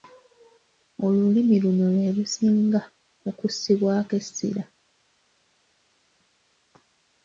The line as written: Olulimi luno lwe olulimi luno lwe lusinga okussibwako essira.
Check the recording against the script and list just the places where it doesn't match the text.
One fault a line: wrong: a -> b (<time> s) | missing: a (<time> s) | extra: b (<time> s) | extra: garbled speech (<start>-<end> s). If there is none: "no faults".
missing: olulimi luno lwe (2.1 s)